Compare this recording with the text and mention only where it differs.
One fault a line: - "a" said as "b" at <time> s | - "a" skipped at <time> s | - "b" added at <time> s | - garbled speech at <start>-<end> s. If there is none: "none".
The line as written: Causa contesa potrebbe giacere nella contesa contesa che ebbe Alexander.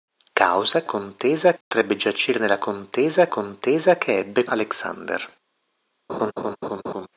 none